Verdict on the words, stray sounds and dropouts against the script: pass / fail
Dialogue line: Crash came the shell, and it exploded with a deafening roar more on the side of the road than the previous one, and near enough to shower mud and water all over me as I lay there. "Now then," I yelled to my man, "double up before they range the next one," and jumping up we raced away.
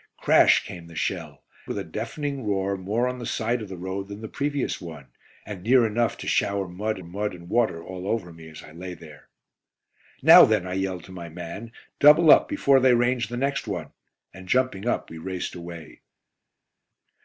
fail